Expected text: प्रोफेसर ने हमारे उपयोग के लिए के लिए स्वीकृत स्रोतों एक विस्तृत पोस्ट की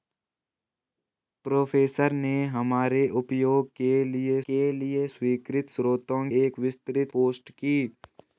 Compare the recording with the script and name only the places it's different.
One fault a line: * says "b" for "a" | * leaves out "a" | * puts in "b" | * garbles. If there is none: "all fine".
all fine